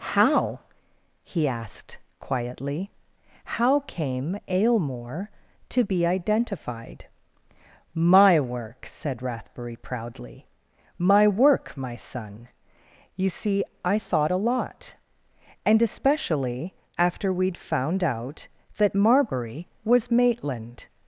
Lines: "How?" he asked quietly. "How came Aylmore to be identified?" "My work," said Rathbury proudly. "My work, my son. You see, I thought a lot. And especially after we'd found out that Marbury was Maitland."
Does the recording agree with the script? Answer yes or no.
yes